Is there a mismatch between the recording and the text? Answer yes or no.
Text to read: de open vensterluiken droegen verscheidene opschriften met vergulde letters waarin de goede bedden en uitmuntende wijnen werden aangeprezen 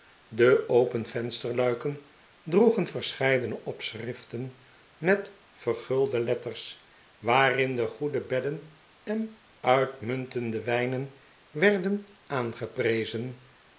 no